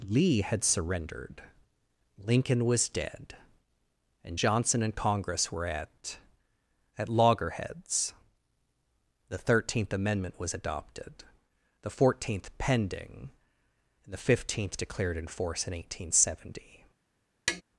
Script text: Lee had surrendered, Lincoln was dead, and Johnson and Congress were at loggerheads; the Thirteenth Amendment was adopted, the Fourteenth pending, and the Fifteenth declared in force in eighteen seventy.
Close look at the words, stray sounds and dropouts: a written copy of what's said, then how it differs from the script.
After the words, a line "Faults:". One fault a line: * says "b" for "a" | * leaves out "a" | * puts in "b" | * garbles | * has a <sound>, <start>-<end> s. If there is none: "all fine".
Lee had surrendered, Lincoln was dead, and Johnson and Congress were at at loggerheads; the Thirteenth Amendment was adopted, the Fourteenth pending, and the Fifteenth declared in force in eighteen seventy.
Faults:
* puts in "at"
* has a tap, 17.5-17.6 s